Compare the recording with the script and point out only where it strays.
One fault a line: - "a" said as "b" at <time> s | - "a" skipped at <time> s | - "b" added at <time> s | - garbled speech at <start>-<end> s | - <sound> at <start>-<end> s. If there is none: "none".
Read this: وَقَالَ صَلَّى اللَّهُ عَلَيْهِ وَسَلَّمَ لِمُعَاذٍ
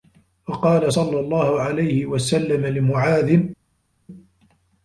none